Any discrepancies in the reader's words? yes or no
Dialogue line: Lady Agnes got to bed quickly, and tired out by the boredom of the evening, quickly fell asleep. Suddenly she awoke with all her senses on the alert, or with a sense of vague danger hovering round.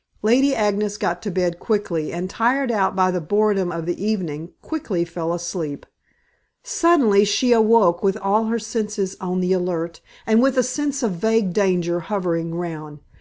yes